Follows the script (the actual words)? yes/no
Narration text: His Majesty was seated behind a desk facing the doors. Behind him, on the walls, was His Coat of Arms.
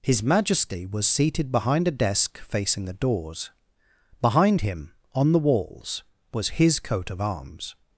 yes